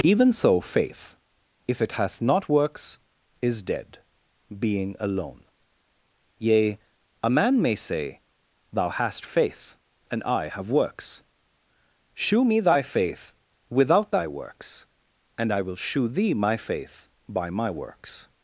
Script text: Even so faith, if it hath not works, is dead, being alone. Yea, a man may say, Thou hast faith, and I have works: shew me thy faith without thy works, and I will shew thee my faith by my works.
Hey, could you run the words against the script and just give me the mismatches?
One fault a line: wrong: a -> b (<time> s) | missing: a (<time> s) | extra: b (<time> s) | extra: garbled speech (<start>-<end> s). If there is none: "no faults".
no faults